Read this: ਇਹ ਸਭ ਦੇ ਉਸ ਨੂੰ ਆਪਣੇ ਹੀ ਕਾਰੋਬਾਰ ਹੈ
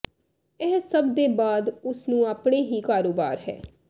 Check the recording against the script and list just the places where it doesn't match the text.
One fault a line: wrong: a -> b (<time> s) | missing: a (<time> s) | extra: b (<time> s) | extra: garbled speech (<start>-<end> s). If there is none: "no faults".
extra: ਬਾਅਦ (1.4 s)